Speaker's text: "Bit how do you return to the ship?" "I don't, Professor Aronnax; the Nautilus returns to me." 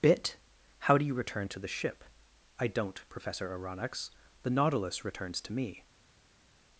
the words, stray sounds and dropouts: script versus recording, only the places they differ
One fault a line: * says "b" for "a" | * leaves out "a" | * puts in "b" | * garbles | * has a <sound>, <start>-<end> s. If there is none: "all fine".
all fine